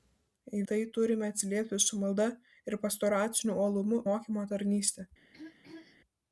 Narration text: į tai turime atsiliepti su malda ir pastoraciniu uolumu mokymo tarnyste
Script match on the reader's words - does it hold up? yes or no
yes